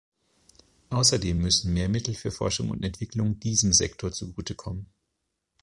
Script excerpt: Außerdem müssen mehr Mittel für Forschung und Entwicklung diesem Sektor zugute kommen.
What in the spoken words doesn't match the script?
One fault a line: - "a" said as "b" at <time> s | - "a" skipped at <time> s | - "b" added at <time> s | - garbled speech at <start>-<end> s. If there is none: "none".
none